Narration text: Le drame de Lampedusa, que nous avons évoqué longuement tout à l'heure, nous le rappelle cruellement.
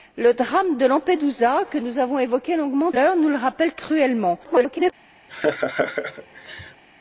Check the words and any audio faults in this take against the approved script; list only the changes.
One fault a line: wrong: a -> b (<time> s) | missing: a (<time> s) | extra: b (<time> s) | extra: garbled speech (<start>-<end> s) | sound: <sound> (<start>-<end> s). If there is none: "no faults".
missing: tout à (2.9 s)
extra: garbled speech (4.4-4.9 s)
sound: laugh (5.3-6.8 s)